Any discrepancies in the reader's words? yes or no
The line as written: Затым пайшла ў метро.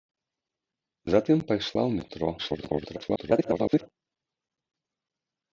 yes